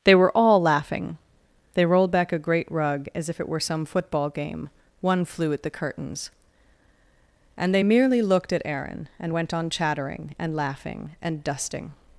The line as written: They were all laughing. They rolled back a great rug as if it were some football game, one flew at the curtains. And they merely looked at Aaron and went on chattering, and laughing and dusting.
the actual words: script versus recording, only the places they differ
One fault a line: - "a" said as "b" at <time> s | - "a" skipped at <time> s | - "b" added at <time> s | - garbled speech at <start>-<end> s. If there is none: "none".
none